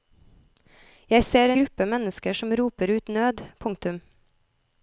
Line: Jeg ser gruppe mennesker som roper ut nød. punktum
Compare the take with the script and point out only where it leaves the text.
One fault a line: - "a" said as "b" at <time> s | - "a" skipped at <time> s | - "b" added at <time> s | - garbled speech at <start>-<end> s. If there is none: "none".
none